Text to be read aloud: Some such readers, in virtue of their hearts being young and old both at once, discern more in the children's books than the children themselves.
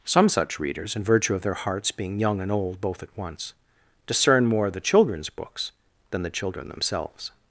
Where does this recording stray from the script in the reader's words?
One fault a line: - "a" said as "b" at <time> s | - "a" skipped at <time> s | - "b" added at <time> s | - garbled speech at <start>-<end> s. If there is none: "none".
- "in" skipped at 4.7 s